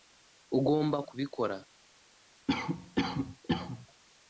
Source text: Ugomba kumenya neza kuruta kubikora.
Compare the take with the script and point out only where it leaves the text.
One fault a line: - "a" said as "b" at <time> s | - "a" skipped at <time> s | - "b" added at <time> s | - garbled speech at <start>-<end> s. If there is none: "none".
- "kumenya neza kuruta" skipped at 1.0 s